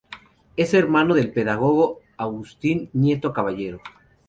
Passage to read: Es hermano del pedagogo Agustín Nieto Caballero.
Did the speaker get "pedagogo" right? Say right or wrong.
right